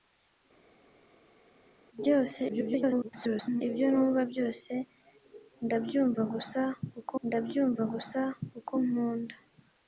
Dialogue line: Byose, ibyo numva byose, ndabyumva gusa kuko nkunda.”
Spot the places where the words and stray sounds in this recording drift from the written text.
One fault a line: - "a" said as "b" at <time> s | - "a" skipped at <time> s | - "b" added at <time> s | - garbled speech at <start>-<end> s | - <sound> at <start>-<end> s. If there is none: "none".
- garbled speech at 2.5-3.6 s
- "ndabyumva gusa kuko" added at 7.3 s